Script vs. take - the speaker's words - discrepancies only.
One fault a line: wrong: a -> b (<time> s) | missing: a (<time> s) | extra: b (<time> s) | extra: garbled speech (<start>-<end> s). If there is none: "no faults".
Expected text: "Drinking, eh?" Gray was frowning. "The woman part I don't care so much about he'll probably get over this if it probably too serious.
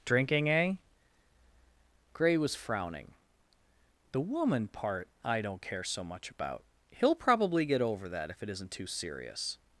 wrong: this -> that (8.1 s)
wrong: probably -> isn't (8.5 s)